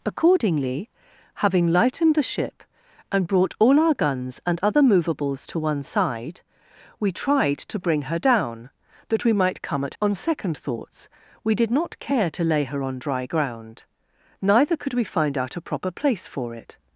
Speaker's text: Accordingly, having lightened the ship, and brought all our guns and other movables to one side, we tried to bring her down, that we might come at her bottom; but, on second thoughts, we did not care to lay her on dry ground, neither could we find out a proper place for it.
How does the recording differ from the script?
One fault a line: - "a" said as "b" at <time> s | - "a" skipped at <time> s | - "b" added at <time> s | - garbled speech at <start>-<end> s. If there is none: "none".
- "her bottom but" skipped at 9.9 s